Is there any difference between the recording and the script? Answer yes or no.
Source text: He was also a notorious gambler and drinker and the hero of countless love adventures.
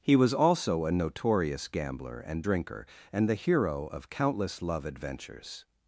no